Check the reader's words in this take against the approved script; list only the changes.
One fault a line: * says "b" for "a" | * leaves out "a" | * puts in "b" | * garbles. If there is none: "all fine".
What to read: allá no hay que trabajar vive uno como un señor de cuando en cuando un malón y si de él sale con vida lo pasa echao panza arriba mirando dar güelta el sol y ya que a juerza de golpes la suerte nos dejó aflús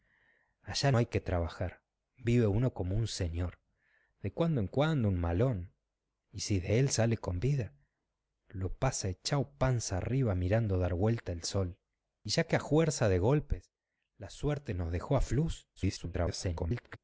* leaves out "no"
* garbles